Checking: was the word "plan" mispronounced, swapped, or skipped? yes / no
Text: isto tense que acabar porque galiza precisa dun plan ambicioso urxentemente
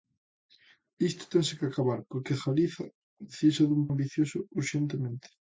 yes